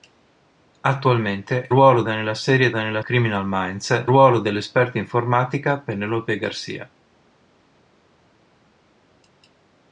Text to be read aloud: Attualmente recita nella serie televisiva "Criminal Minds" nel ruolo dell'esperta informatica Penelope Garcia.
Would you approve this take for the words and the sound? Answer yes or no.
no